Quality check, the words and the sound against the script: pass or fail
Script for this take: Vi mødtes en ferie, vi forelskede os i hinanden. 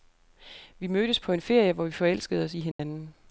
fail